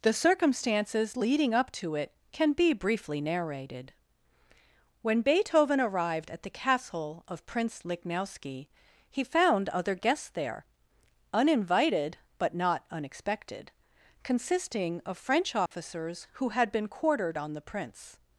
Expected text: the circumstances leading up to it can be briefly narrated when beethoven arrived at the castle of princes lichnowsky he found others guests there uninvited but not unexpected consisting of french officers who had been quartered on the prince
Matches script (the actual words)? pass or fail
fail